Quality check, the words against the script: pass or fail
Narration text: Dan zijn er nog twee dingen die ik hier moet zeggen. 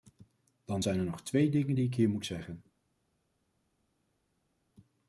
pass